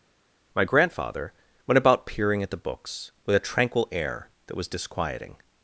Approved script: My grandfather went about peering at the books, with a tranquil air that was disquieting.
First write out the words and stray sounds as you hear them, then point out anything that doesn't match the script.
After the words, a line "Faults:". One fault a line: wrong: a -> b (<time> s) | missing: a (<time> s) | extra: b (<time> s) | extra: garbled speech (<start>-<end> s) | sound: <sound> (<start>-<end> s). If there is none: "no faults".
My grandfather went about peering at the books, with a tranquil air that was disquieting.
Faults:
no faults